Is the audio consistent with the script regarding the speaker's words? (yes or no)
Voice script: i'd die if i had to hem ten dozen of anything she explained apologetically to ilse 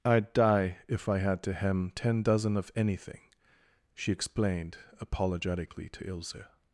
yes